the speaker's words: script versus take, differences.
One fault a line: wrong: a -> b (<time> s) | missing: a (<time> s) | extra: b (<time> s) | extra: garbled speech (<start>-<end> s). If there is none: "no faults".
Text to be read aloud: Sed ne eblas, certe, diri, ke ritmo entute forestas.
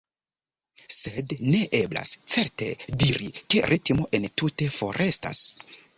no faults